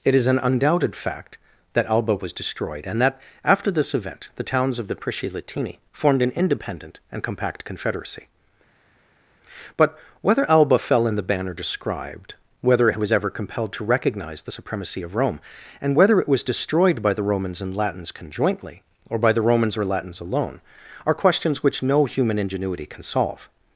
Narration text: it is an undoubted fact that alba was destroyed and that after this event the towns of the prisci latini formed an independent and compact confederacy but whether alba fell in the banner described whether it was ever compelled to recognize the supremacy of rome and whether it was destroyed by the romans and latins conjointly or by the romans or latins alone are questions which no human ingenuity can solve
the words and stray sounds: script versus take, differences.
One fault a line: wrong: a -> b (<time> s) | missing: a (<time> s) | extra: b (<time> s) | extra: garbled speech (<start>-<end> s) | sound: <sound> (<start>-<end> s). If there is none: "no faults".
no faults